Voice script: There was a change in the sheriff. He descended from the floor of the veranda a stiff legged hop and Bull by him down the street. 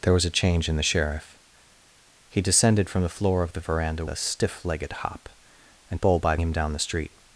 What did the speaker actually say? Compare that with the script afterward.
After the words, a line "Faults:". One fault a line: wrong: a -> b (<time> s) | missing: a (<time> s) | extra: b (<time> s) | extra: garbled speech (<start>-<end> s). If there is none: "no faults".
There was a change in the sheriff. He descended from the floor of the veranda a stiff legged hop and Bull by him down the street.
Faults:
no faults